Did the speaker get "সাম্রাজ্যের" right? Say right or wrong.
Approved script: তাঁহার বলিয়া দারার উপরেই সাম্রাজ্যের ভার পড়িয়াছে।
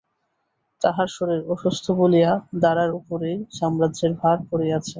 right